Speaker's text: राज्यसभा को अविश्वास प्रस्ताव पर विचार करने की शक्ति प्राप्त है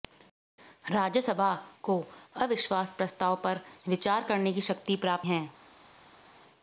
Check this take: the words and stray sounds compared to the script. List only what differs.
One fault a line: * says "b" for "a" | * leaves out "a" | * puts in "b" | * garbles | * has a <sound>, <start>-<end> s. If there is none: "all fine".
all fine